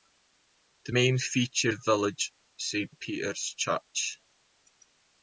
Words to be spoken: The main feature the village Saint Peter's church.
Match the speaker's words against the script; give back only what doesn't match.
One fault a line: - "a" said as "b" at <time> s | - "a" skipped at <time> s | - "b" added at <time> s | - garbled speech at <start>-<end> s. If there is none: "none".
none